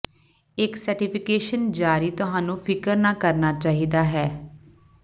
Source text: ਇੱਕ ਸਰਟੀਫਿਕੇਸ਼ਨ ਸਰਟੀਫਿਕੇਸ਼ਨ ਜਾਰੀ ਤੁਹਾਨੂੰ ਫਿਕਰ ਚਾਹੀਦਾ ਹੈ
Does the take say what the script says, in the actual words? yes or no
no